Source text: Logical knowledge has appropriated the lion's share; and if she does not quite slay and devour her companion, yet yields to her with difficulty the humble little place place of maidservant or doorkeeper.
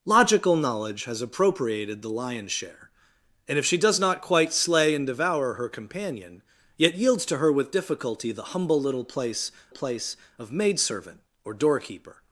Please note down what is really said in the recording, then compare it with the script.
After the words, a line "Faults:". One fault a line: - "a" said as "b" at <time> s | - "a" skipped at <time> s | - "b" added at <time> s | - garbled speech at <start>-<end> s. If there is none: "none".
Logical knowledge has appropriated the lion's share; and if she does not quite slay and devour her companion, yet yields to her with difficulty the humble little place place of maidservant or doorkeeper.
Faults:
none